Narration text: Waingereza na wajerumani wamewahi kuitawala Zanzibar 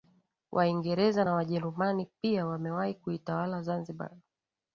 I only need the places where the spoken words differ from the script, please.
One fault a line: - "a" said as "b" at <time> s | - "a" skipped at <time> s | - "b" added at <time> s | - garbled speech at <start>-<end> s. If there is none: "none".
- "pia" added at 2.2 s